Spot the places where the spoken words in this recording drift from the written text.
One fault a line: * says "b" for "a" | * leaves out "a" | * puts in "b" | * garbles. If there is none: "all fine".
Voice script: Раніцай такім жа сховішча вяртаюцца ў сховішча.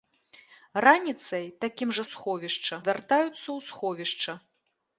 all fine